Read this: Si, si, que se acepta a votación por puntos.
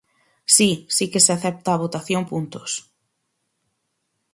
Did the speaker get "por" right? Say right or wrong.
wrong